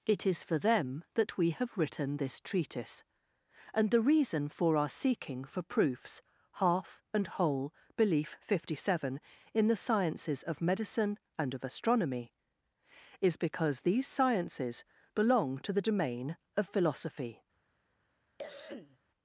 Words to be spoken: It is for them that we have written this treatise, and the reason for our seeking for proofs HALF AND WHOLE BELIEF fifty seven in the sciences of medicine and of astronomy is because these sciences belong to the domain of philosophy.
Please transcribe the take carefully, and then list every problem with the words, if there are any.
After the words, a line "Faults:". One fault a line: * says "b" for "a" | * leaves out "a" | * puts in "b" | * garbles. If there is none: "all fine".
It is for them that we have written this treatise, and the reason for our seeking for proofs HALF AND WHOLE BELIEF fifty seven in the sciences of medicine and of astronomy is because these sciences belong to the domain of philosophy.
Faults:
all fine